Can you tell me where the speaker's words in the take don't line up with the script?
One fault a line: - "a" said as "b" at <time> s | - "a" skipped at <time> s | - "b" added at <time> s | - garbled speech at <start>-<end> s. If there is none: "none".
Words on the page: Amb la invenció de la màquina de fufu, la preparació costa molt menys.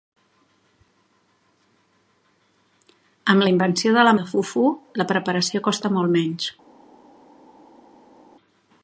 - "màquina" skipped at 4.1 s